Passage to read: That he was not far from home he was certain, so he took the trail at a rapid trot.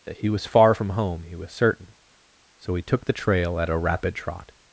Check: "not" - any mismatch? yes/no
yes